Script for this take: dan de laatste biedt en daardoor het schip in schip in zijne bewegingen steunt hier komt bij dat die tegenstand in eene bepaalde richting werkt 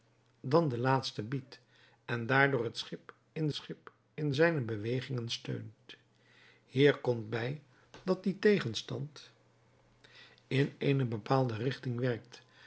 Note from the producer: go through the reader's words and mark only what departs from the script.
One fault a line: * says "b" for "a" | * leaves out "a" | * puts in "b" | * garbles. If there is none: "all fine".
all fine